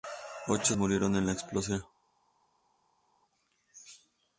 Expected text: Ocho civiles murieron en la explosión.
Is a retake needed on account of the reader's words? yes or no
yes